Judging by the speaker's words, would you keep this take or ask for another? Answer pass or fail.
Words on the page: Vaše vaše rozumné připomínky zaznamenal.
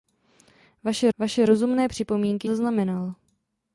pass